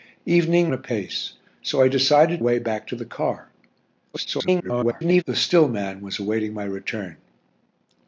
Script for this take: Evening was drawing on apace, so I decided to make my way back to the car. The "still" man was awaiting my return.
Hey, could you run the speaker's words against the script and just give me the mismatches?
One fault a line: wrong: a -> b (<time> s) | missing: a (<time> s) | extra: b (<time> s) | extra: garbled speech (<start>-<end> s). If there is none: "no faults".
missing: was drawing on (0.7 s)
missing: to make my (2.4 s)
extra: garbled speech (4.1-5.2 s)